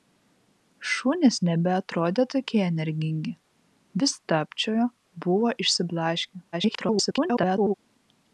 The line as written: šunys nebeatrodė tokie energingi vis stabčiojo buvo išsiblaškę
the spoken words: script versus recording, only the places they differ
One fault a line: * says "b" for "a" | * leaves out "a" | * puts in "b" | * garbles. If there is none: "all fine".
* garbles